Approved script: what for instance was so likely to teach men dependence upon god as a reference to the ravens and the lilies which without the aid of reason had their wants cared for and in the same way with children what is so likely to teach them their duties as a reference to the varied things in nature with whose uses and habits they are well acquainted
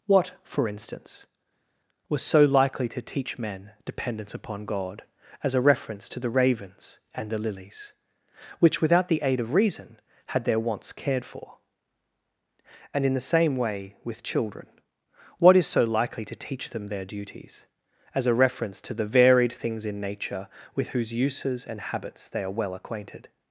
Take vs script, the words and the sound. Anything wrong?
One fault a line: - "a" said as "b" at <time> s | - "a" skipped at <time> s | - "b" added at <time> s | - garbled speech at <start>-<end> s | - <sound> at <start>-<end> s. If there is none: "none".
none